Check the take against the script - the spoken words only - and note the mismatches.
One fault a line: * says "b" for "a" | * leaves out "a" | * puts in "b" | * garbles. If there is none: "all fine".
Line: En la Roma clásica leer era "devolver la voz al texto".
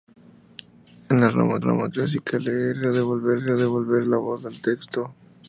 * puts in "Roma"
* puts in "era devolver"